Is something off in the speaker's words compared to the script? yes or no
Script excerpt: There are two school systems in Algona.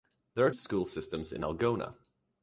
yes